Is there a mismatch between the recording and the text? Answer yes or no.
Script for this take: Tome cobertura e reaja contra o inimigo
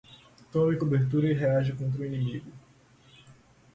no